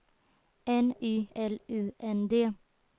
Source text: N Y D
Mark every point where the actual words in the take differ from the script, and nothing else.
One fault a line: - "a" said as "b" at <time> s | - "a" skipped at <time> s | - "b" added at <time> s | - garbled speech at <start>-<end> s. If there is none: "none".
- "L U N" added at 1.3 s